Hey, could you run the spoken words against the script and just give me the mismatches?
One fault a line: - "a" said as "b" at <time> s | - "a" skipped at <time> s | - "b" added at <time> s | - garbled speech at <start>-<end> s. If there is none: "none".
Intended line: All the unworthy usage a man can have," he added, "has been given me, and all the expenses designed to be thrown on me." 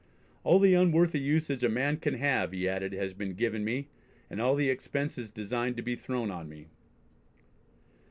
none